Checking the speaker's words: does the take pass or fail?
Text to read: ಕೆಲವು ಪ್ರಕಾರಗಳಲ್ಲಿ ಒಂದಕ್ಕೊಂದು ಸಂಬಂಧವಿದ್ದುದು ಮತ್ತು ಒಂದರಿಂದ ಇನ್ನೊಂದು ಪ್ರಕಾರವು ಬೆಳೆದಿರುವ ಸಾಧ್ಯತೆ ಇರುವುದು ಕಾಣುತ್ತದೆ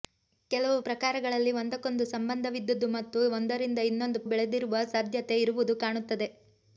fail